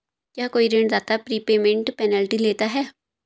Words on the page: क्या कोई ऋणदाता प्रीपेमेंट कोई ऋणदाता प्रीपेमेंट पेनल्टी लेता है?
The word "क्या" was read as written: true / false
true